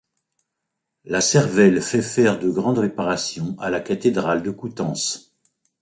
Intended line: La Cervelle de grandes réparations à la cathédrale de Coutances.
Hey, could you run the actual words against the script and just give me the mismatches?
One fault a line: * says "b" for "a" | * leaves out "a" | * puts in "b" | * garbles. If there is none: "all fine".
* puts in "fait faire"